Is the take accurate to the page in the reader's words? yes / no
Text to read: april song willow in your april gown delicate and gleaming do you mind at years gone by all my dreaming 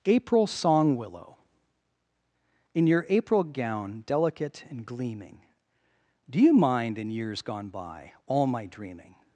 no